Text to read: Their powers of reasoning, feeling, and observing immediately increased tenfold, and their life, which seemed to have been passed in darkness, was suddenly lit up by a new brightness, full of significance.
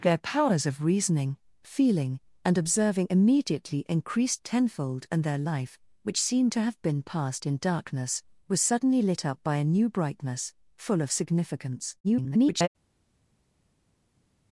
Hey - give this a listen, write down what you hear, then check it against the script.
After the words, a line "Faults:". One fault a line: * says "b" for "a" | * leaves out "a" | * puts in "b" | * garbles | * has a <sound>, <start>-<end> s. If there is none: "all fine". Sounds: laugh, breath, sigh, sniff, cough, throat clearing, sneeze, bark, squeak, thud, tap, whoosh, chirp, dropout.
Their powers of reasoning, feeling, and observing immediately increased tenfold, and their life, which seemed to have been passed in darkness, was suddenly lit up by a new brightness, full of significance. [garbled]
Faults:
* garbles